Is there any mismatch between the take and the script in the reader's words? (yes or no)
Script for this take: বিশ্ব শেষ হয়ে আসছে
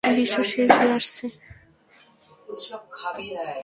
no